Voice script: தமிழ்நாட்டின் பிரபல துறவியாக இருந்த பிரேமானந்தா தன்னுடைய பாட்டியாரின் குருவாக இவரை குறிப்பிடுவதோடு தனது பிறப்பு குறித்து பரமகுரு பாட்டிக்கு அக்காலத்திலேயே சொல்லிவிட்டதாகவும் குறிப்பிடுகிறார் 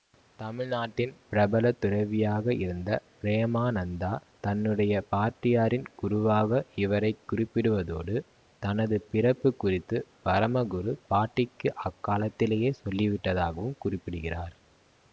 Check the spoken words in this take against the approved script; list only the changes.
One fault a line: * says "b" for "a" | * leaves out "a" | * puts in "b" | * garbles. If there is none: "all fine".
all fine